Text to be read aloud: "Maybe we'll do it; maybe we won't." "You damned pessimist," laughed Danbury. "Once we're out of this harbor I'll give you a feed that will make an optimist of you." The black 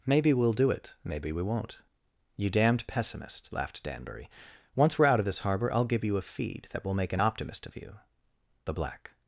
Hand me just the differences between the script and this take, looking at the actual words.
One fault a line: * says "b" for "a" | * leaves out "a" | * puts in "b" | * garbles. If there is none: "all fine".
all fine